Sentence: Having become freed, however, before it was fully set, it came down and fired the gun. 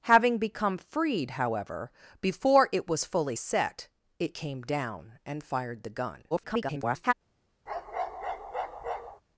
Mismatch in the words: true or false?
true